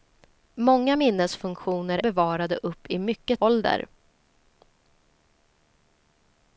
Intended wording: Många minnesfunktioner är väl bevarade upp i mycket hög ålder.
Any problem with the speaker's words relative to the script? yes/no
yes